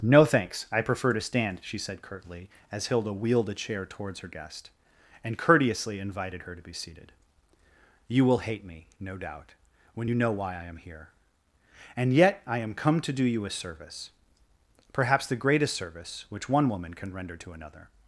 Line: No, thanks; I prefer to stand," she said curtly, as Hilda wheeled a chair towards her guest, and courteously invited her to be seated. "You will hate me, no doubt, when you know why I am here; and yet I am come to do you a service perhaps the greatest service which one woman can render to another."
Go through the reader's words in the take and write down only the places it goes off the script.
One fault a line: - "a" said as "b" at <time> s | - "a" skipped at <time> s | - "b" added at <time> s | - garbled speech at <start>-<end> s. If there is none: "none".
none